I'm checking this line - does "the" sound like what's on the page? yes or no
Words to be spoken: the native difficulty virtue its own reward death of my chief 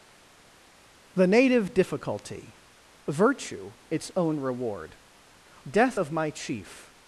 yes